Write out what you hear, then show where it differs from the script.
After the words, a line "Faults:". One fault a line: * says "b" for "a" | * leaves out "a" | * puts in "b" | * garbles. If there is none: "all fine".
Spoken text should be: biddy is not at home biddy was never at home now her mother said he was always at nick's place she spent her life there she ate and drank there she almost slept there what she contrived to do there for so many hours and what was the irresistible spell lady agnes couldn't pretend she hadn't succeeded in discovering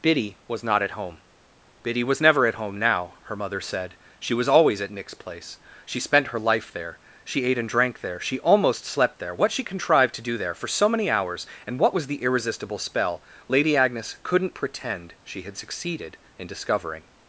biddy was not at home biddy was never at home now her mother said she was always at nick's place she spent her life there she ate and drank there she almost slept there what she contrived to do there for so many hours and what was the irresistible spell lady agnes couldn't pretend she had succeeded in discovering
Faults:
* says "was" for "is"
* says "she" for "he"
* says "had" for "hadn't"